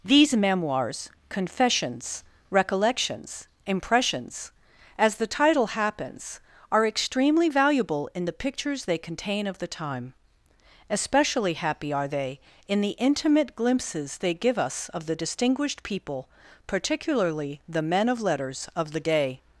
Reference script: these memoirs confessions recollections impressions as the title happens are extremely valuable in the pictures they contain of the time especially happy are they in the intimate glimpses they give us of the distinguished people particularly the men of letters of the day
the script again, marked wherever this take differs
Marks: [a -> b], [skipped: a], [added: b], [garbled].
these memoirs confessions recollections impressions as the title happens are extremely valuable in the pictures they contain of the time especially happy are they in the intimate glimpses they give us of the distinguished people particularly the men of letters of the day